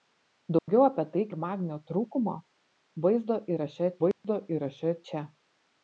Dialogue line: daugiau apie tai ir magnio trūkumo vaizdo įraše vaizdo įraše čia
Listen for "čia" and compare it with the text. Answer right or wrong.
right